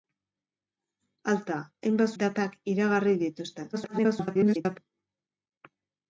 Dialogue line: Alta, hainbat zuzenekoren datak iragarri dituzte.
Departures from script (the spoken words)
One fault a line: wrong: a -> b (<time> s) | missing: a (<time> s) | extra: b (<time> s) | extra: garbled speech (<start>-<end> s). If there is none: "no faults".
missing: zuzenekoren (2.2 s)
extra: garbled speech (3.7-4.8 s)